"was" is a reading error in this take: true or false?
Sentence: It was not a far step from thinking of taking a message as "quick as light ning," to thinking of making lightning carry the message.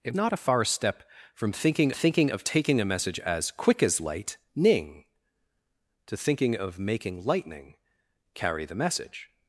true